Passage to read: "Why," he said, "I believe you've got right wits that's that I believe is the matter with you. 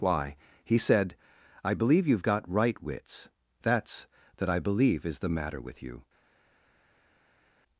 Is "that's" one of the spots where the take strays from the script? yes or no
no